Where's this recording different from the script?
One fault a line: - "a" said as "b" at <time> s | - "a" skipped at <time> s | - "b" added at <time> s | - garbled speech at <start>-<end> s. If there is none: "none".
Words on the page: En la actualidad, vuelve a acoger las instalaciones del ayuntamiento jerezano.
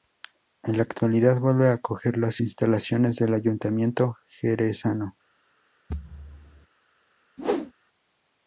none